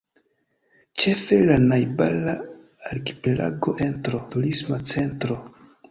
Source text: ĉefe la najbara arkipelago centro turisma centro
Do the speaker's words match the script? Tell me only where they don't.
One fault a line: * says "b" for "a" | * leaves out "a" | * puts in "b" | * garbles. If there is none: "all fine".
all fine